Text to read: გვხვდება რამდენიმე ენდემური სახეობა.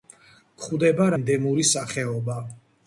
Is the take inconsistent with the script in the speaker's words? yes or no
yes